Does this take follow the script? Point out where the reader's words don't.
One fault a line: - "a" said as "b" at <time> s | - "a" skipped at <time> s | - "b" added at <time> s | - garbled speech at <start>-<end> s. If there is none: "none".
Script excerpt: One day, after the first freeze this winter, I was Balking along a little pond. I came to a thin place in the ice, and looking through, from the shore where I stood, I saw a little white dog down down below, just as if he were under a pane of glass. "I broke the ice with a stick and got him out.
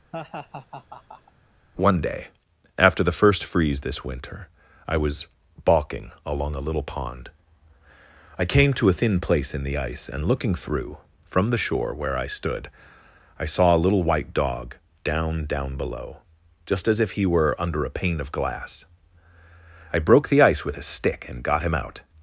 none